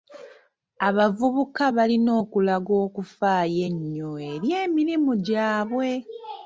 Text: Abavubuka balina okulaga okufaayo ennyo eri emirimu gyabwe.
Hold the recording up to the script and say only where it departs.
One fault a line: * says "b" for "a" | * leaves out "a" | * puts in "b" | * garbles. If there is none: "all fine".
all fine